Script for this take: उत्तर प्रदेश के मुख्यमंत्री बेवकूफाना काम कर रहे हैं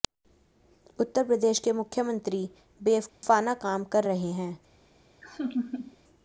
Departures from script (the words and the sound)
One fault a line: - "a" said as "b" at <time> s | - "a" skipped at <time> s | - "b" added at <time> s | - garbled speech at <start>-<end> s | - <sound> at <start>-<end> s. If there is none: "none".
- dropout at 3.1-3.2 s
- laugh at 5.2-6.0 s